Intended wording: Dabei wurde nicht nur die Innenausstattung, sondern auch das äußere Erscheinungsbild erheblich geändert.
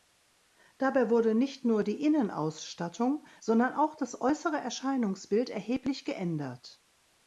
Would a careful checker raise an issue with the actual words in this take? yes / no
no